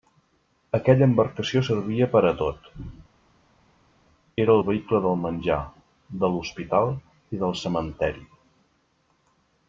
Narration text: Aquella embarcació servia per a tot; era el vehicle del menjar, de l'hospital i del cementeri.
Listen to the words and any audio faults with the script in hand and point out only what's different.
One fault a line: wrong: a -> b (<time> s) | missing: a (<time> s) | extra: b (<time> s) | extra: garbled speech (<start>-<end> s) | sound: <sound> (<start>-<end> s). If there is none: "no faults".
no faults